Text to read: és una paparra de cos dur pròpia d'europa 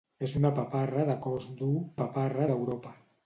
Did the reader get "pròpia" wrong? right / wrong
wrong